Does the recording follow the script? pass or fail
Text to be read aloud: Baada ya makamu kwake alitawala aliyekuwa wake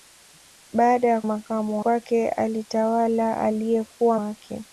pass